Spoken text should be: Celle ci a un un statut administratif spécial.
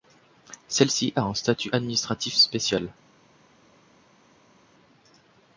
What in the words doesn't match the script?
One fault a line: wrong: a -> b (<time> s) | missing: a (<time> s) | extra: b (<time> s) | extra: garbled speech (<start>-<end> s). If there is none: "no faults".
missing: un (1.4 s)